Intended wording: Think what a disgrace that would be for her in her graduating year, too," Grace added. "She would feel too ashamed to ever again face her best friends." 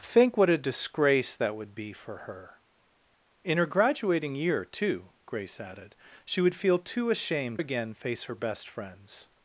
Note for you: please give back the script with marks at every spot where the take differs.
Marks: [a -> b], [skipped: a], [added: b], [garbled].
Think what a disgrace that would be for her in her graduating year, too," Grace added. "She would feel too ashamed [skipped: to ever] again face her best friends."